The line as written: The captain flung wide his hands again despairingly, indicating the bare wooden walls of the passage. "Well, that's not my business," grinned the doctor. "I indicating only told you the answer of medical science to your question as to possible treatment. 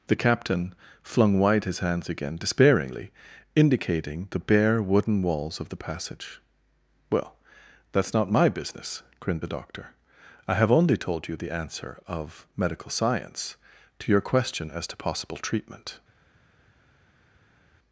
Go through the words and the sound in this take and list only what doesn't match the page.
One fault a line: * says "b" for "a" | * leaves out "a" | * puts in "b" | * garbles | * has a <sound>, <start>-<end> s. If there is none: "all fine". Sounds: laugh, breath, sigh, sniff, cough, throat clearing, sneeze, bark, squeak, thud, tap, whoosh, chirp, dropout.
* says "have" for "indicating"